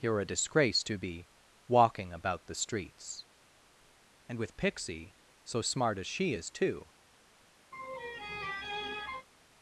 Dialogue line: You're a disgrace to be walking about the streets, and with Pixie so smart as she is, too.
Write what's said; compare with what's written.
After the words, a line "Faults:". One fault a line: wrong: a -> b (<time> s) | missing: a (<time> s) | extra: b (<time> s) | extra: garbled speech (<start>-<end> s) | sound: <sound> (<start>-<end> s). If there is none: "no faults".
You're a disgrace to be walking about the streets, and with Pixie so smart as she is, too.
Faults:
sound: laugh (7.7-9.3 s)